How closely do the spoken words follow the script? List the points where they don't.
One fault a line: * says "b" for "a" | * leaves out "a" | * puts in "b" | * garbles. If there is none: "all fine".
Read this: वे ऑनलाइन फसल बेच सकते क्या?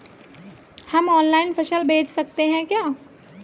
* says "हम" for "वे"
* puts in "हैं"